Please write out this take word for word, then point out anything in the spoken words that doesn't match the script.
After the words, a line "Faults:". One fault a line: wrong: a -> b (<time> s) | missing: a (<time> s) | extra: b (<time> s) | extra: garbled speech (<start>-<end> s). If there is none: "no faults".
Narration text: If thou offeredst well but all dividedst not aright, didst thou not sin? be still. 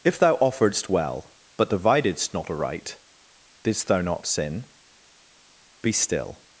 If thou offeredst well but dividedst not aright, didst thou not sin? be still.
Faults:
missing: all (1.7 s)